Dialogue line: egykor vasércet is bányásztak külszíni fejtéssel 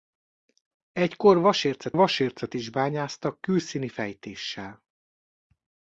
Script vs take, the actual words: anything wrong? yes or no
yes